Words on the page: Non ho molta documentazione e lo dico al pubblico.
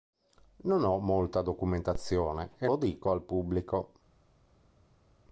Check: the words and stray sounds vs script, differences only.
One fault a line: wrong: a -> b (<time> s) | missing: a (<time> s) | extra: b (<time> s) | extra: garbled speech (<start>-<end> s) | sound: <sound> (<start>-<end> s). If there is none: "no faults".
no faults